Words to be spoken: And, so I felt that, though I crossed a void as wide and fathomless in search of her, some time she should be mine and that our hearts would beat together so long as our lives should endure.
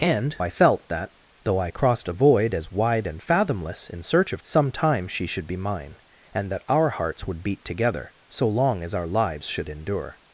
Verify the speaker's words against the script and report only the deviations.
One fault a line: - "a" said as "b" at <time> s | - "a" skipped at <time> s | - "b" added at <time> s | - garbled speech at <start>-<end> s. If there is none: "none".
- "so" skipped at 0.3 s
- "her" skipped at 4.4 s